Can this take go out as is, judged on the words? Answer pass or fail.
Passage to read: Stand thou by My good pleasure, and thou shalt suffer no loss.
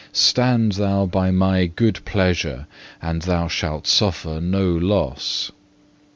pass